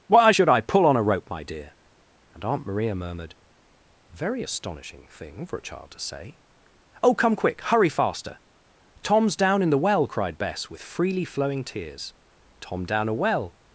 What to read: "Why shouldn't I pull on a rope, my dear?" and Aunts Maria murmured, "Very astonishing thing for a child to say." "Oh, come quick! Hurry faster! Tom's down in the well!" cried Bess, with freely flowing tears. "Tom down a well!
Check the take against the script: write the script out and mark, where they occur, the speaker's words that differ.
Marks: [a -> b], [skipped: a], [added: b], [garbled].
"Why [shouldn't -> should] I pull on a rope, my dear?" and [Aunts -> Aunt] Maria murmured, "Very astonishing thing for a child to say." "Oh, come quick! Hurry faster! Tom's down in the well!" cried Bess, with freely flowing tears. "Tom down a well!